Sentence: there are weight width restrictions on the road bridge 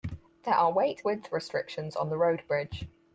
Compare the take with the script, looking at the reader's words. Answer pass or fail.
pass